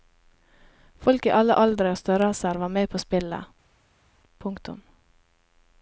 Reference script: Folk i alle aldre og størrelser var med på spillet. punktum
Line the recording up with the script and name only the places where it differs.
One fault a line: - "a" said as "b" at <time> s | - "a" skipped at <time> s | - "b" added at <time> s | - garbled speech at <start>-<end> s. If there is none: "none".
none